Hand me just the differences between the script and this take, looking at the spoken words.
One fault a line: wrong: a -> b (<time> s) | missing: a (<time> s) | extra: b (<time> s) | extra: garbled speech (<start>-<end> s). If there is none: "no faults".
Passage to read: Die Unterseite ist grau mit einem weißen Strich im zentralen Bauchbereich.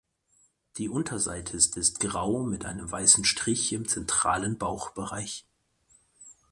extra: ist (1.8 s)